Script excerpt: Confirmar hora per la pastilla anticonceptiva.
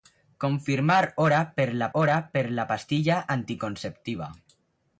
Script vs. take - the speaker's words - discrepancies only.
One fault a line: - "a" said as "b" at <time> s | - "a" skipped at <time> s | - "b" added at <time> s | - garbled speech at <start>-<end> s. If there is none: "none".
- "hora per la" added at 1.9 s